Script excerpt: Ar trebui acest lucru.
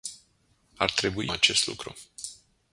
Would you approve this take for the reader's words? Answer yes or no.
yes